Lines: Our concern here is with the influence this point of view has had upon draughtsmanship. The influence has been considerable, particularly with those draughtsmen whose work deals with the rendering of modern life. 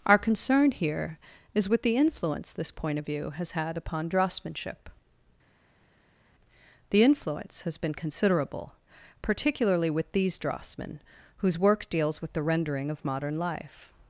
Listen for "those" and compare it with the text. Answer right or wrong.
wrong